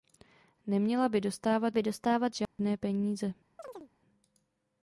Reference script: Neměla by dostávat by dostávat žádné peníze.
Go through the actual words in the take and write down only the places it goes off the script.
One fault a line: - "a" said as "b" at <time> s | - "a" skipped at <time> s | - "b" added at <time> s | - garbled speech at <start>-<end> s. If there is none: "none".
none